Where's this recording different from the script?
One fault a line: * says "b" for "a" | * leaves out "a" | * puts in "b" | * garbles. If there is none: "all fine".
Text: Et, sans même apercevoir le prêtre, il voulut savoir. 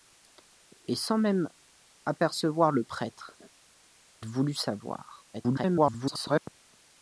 * leaves out "il"
* garbles